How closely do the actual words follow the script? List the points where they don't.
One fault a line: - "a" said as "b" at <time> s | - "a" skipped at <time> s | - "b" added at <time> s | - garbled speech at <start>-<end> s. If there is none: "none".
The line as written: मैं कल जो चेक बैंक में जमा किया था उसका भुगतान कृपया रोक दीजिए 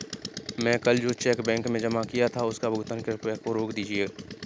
none